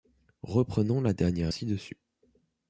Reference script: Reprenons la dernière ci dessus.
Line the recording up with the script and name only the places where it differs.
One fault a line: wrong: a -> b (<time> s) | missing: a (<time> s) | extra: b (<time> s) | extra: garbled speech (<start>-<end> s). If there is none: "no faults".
no faults